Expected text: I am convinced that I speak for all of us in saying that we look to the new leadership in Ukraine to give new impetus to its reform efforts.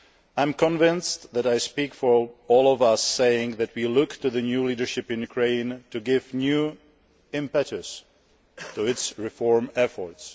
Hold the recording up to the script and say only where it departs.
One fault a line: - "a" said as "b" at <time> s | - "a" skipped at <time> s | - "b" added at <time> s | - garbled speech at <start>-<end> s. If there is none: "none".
none